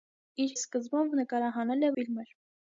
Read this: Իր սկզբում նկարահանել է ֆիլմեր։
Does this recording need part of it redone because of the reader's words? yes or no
no